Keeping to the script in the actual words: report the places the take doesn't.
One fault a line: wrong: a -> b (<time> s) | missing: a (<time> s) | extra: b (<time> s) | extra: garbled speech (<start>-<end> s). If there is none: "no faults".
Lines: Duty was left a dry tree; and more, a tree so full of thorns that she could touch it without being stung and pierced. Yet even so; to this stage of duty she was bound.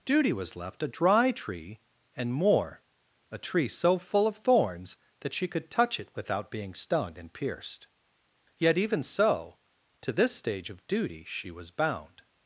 no faults